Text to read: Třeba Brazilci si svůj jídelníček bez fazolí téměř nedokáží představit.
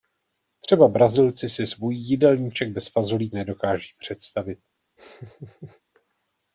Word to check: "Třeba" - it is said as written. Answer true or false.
true